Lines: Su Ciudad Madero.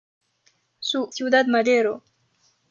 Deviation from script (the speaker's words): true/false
false